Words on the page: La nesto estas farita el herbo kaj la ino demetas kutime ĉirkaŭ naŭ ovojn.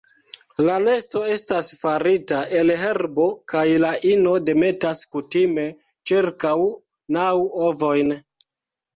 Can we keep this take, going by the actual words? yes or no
yes